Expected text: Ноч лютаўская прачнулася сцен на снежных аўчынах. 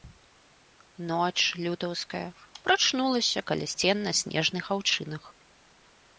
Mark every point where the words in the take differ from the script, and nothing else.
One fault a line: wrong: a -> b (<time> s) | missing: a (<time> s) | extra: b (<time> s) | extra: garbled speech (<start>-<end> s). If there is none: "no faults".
extra: каля (3.5 s)